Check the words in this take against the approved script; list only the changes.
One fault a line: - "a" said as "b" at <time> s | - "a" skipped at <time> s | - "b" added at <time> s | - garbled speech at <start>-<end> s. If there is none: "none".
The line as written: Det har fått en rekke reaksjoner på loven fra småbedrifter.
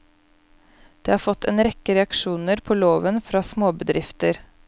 none